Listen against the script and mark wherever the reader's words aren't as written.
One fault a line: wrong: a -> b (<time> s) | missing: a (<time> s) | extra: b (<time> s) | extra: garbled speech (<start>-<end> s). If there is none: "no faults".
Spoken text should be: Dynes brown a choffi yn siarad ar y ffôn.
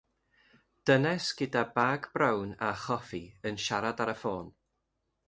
extra: gyda bag (1.4 s)